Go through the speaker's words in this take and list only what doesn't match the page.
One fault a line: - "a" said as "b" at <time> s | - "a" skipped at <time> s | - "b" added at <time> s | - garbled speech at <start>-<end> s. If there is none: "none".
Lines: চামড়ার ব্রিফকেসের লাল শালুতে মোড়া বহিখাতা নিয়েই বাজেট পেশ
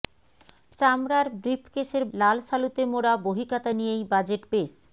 none